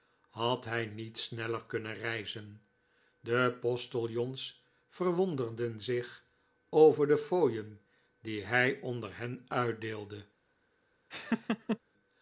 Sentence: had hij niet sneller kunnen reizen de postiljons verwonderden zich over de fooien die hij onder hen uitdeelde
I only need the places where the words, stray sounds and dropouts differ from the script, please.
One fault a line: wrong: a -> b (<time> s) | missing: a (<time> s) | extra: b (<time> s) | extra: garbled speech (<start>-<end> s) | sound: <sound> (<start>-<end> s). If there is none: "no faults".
sound: laugh (11.1-11.8 s)